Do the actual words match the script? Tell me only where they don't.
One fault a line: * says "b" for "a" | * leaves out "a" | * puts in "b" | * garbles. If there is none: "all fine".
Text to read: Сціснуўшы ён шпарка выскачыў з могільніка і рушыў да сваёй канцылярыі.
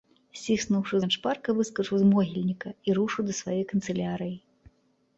all fine